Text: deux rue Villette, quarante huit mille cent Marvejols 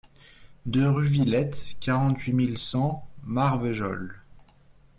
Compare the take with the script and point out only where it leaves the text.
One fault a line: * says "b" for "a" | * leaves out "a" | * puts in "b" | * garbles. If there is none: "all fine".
all fine